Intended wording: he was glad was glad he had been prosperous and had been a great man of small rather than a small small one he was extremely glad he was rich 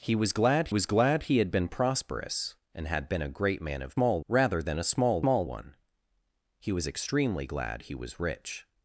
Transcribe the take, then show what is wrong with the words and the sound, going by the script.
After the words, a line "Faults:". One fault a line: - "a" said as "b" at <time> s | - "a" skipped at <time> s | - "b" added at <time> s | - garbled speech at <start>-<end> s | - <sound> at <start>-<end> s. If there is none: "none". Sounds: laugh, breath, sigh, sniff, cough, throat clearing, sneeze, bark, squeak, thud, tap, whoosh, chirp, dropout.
he was glad was glad he had been prosperous and had been a great man of small rather than a small small one he was extremely glad he was rich
Faults:
none